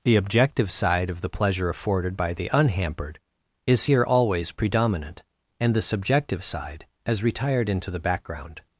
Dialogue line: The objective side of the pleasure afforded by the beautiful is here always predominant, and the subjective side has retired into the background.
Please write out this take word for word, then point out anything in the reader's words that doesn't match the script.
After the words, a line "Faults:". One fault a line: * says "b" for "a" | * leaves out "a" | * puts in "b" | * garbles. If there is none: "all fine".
The objective side of the pleasure afforded by the unhampered is here always predominant, and the subjective side has retired into the background.
Faults:
* says "unhampered" for "beautiful"